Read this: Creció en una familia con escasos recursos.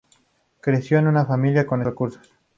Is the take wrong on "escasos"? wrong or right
wrong